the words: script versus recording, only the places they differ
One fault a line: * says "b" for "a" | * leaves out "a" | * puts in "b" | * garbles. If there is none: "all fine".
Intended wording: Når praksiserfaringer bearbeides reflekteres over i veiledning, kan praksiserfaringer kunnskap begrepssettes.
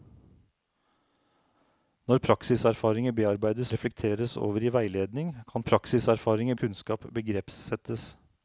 all fine